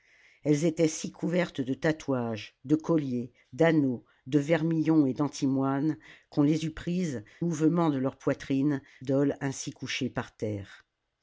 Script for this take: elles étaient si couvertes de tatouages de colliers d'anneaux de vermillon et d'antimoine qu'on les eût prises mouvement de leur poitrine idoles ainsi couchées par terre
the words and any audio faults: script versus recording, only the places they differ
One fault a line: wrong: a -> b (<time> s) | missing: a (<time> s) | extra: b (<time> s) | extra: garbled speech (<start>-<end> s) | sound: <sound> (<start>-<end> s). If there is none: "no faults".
no faults